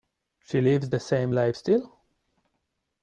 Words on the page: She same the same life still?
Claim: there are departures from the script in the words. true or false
true